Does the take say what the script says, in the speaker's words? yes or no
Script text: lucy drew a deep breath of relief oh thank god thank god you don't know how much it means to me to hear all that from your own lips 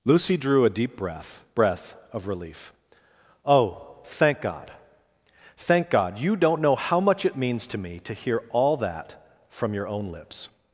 no